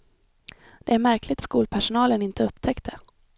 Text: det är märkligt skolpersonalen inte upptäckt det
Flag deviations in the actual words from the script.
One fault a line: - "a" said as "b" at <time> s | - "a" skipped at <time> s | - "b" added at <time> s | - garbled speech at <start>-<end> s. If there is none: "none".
none